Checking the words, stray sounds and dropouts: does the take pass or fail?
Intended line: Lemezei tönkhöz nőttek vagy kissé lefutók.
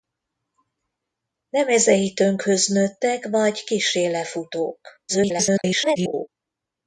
fail